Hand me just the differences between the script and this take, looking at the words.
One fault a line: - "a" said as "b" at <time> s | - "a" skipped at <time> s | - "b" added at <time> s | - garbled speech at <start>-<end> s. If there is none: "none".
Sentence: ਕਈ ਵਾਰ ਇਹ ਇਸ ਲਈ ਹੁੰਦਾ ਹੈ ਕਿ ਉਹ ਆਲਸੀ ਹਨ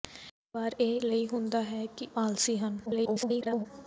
- "ਇਸ" skipped at 1.0 s
- "ਉਹ" skipped at 2.1 s
- garbled speech at 2.9-3.7 s